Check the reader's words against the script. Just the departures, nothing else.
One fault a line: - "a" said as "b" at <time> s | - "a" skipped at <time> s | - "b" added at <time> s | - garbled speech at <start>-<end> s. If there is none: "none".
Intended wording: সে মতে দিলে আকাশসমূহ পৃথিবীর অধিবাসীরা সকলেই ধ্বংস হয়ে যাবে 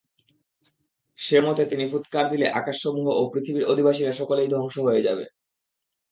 - "তিনি ফুৎকার" added at 1.6 s
- "ও" added at 3.1 s